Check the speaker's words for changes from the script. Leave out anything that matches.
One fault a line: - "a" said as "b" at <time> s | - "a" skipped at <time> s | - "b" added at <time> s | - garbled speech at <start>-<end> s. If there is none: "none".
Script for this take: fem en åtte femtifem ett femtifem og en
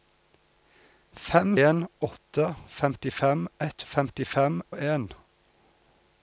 none